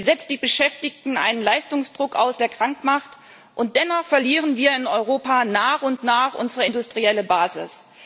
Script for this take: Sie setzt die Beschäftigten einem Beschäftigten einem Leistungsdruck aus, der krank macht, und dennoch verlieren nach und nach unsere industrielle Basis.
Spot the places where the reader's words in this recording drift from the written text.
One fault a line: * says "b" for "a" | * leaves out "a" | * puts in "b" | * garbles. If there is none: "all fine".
* leaves out "Beschäftigten einem"
* puts in "wir in Europa"